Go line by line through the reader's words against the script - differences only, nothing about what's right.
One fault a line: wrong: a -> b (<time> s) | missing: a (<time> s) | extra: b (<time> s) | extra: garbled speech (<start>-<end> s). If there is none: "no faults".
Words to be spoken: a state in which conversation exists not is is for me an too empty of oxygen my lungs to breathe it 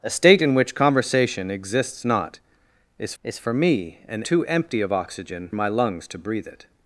no faults